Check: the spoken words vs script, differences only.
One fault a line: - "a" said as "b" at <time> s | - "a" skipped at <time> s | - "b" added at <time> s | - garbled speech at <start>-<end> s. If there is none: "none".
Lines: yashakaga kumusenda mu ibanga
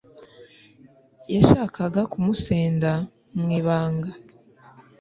none